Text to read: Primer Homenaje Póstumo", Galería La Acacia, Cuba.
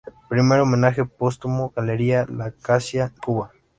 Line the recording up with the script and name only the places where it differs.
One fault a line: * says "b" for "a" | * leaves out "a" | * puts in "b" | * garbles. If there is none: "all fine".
all fine